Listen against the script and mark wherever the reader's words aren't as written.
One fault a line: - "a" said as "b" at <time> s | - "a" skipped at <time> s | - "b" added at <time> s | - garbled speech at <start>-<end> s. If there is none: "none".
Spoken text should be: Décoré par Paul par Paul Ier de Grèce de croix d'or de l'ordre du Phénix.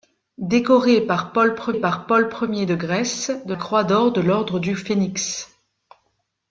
none